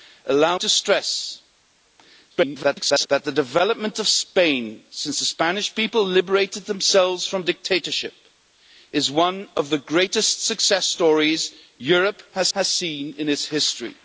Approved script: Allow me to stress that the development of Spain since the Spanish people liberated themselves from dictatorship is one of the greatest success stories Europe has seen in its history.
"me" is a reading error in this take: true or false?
true